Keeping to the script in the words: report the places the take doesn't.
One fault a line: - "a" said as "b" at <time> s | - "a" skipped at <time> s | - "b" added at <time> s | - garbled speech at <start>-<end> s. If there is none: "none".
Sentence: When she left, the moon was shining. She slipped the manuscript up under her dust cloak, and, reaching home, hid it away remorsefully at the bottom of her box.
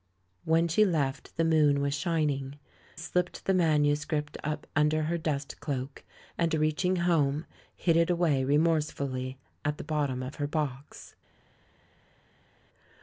- "She" skipped at 2.6 s